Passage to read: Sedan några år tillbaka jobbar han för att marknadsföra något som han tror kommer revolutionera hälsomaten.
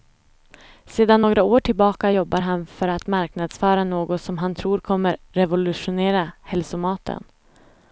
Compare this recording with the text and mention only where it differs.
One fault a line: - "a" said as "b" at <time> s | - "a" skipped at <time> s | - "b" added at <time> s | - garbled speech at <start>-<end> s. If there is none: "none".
none